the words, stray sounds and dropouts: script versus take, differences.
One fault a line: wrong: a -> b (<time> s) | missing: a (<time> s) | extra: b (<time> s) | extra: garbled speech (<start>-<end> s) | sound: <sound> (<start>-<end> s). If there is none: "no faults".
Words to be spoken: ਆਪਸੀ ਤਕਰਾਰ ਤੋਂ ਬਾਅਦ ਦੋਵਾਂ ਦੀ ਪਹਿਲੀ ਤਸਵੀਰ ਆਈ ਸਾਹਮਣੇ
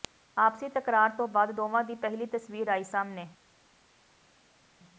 no faults